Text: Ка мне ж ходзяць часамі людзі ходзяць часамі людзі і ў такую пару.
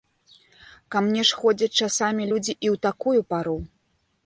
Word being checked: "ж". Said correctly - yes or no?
yes